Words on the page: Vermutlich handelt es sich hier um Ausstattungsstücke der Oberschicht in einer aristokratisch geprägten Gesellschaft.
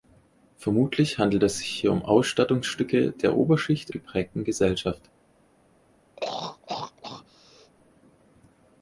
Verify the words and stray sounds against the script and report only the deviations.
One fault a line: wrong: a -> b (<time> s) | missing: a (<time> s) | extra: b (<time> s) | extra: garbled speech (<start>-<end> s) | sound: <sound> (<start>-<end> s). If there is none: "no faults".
missing: in einer aristokratisch (3.9 s)
sound: throat clearing (6.2-7.7 s)